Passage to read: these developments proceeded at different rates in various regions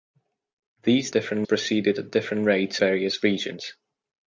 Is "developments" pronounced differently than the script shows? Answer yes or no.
yes